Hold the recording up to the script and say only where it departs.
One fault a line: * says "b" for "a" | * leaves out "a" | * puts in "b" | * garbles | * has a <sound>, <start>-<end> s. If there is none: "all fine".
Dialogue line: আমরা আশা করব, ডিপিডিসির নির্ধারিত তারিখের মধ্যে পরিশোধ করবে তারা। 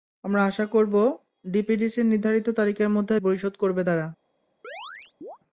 * has a chirp, 4.6-5.4 s